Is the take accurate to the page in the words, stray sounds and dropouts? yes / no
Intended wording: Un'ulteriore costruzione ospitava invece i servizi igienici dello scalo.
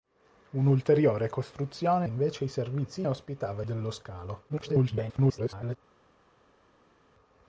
no